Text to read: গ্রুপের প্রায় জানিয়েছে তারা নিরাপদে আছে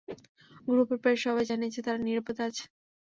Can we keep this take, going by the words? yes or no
no